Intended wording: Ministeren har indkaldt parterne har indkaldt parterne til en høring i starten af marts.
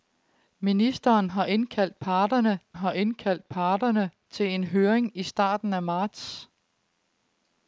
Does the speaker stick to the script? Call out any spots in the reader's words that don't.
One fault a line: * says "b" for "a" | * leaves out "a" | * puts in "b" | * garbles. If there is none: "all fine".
all fine